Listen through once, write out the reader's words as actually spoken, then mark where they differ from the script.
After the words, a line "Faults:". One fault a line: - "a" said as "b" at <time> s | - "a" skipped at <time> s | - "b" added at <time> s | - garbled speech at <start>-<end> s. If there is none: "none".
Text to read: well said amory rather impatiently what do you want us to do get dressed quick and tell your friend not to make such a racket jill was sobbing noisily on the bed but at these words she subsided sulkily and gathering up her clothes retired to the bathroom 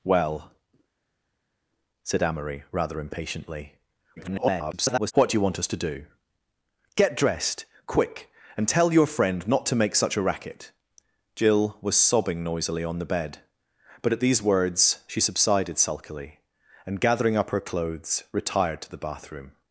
well said amory rather impatiently [garbled] what do you want us to do get dressed quick and tell your friend not to make such a racket jill was sobbing noisily on the bed but at these words she subsided sulkily and gathering up her clothes retired to the bathroom
Faults:
- garbled speech at 4.2-5.1 s